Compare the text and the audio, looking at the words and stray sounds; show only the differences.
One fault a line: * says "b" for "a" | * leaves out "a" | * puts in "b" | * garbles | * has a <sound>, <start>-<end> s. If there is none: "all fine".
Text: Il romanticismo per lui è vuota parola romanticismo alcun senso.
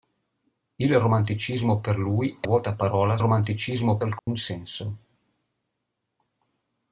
* has a dropout, 4.2-4.3 s